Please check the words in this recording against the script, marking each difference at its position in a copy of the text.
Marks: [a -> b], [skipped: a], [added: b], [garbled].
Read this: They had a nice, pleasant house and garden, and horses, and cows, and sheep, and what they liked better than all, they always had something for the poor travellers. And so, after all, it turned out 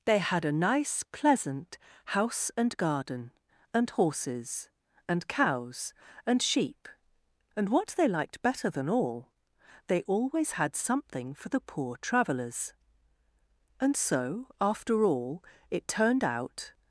They had a nice, pleasant house and garden, and horses, and cows, and sheep, and what they liked better than all, they always had something for the poor travellers. And so, after all, it turned out